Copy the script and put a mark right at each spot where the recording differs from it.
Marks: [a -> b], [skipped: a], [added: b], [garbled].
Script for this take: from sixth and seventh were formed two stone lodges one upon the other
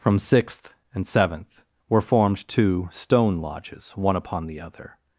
from sixth and seventh were formed two stone lodges one upon the other